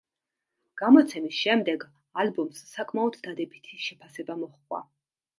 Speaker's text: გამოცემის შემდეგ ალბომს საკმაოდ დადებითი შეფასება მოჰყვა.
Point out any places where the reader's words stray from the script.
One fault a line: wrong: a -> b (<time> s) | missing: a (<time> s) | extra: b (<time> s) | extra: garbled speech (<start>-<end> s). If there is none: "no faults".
no faults